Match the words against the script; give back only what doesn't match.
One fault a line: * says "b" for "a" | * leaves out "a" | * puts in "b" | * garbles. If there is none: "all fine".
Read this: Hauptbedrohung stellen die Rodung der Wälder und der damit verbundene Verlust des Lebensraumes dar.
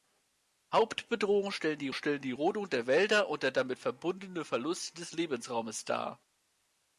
* puts in "stellen die"